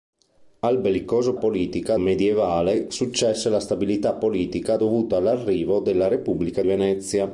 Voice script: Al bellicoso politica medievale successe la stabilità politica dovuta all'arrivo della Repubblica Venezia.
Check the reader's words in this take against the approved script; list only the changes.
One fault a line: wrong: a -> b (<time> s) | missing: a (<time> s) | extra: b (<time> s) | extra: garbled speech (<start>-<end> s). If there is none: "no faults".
no faults